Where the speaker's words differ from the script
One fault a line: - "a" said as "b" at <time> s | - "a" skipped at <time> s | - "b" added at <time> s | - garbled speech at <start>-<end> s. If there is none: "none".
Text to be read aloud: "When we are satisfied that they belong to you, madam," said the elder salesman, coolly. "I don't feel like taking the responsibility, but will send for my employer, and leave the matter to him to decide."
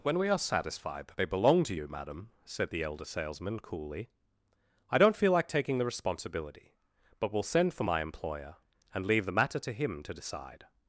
none